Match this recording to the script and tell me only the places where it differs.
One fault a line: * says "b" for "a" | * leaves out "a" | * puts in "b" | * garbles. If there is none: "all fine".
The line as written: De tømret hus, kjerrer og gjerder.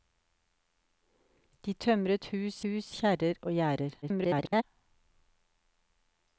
* puts in "hus"
* garbles